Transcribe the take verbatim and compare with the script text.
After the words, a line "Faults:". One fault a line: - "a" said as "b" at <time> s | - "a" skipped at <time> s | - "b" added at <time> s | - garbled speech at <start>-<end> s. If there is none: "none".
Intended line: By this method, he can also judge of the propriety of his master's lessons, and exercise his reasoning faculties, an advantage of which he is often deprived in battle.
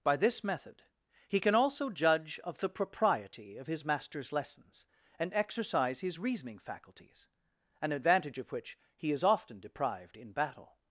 By this method, he can also judge of the propriety of his master's lessons, and exercise his reasoning faculties, an advantage of which he is often deprived in battle.
Faults:
none